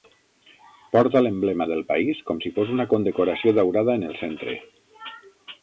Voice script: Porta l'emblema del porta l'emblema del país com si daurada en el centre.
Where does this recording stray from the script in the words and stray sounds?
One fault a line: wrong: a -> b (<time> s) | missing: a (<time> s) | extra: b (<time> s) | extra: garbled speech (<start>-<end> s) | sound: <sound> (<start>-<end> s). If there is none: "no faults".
wrong: porta l'emblema del país com si -> país com si fos una condecoració (1.9 s)